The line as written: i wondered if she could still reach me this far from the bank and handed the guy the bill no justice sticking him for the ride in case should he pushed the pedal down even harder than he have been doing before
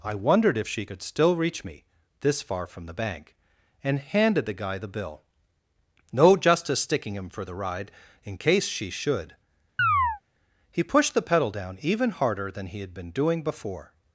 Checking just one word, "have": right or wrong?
wrong